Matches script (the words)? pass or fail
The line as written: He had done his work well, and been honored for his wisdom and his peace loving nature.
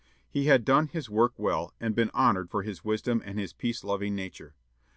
pass